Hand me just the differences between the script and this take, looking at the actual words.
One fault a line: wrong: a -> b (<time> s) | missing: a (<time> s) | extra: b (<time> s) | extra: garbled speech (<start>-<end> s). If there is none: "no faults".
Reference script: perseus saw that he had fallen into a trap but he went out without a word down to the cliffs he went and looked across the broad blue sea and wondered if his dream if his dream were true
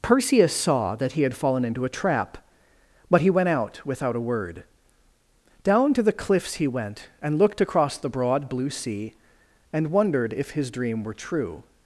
missing: if his dream (11.0 s)